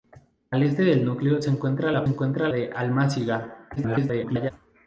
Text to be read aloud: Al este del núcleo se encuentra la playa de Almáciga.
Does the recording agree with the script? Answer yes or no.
no